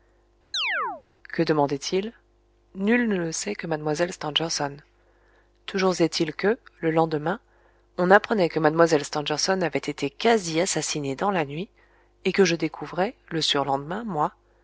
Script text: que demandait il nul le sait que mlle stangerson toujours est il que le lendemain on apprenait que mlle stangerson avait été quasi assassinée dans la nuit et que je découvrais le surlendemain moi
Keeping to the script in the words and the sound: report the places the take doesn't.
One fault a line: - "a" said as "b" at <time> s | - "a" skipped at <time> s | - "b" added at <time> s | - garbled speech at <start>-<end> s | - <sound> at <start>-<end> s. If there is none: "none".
- chirp at 0.5-1.0 s
- "ne" added at 3.1 s